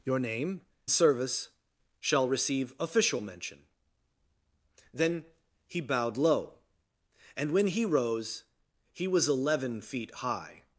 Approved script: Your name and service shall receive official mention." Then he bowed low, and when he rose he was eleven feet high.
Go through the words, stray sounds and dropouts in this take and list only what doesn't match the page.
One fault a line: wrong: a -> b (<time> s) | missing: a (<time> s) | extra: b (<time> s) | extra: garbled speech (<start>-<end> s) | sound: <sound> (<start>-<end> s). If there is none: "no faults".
missing: and (0.6 s)